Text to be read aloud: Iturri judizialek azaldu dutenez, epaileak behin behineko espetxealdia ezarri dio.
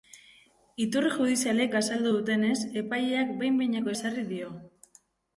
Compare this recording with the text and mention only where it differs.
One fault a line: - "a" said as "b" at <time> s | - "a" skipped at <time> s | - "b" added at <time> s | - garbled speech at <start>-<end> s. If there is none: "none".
- "espetxealdia" skipped at 3.9 s